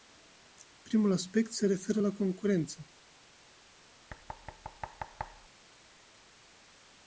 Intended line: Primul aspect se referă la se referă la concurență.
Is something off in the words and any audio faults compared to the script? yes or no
yes